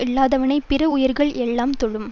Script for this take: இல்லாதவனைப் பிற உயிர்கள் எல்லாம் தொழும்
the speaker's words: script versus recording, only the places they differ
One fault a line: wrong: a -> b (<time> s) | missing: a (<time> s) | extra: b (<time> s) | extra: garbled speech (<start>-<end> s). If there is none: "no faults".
no faults